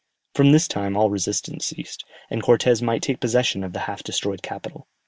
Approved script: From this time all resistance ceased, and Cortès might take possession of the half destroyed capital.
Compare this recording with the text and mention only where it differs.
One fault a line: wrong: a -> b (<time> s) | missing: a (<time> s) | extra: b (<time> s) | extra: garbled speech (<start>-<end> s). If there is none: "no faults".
no faults